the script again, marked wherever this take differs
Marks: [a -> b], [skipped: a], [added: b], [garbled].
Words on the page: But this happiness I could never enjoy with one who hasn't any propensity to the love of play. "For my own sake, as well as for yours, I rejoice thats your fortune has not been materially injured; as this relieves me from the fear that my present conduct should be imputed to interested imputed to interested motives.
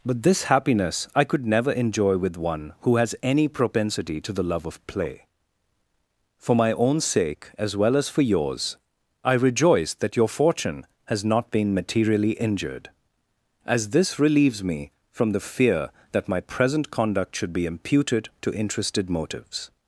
But this happiness I could never enjoy with one who [hasn't -> has] any propensity to the love of play. "For my own sake, as well as for yours, I rejoice [thats -> that] your fortune has not been materially injured; as this relieves me from the fear that my present conduct should be imputed to interested [skipped: imputed to interested] motives.